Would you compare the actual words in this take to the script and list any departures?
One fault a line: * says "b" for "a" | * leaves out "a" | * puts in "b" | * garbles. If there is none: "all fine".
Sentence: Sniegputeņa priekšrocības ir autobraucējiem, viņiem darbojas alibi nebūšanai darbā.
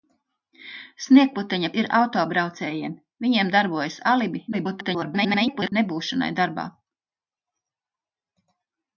* leaves out "priekšrocības"
* garbles